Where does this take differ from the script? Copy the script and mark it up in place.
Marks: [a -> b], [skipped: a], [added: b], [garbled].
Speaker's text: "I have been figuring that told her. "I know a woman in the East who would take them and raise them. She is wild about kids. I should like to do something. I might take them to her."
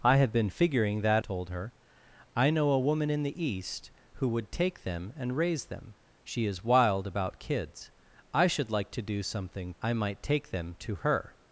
"I have been figuring that told her. "I know a woman in the East who would take them and raise them. She is wild about kids. I should like to do something. I might take them to her."